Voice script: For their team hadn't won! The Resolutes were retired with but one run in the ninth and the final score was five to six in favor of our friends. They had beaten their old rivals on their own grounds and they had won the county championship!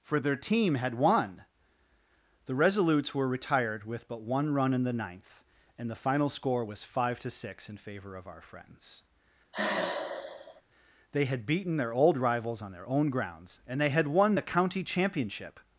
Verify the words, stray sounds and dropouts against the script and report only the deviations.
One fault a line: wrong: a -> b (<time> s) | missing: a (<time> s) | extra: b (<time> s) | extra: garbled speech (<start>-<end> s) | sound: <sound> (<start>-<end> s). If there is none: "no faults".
wrong: hadn't -> had (0.8 s)
sound: sigh (9.5-10.6 s)